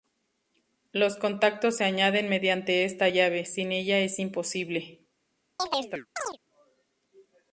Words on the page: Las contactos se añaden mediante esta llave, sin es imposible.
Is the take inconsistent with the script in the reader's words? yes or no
yes